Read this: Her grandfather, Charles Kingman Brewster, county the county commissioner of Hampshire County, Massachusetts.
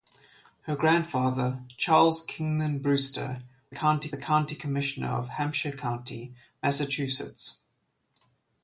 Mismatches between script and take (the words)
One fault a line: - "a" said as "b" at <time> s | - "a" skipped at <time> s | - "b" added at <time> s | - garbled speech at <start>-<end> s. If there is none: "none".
none